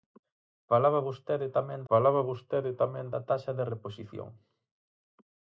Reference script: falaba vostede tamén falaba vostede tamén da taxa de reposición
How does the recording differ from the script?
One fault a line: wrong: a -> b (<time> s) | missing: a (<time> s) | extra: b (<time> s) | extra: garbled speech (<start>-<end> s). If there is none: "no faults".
no faults